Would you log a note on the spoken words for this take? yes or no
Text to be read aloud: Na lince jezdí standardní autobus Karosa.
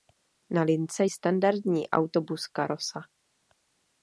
yes